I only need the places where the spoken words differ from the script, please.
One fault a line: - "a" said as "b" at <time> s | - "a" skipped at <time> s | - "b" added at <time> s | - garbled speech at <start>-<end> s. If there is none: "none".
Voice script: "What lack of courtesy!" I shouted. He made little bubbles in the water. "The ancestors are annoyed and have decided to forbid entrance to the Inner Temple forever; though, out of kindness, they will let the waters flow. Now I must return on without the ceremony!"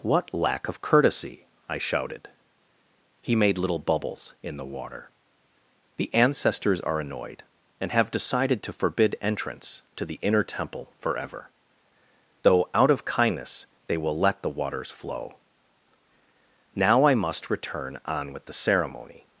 - "without" said as "with" at 18.3 s